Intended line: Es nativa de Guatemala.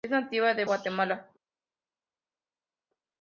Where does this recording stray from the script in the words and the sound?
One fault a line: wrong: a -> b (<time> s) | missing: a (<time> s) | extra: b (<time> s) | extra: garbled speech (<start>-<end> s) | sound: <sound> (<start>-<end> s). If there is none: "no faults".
no faults